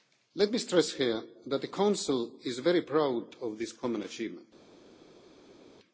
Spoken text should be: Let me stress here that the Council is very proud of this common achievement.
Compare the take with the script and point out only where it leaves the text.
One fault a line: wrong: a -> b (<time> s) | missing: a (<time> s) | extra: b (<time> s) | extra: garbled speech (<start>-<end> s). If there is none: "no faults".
no faults